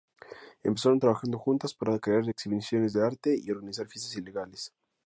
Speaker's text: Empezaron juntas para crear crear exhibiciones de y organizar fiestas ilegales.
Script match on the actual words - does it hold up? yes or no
no